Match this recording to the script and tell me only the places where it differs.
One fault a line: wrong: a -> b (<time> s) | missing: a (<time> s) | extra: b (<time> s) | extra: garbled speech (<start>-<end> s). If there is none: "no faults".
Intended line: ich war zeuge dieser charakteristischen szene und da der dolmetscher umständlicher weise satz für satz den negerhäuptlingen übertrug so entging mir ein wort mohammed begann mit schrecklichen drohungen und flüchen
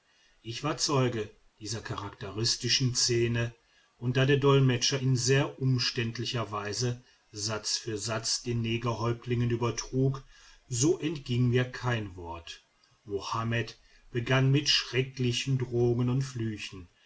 extra: in sehr (5.0 s)
wrong: ein -> kein (11.7 s)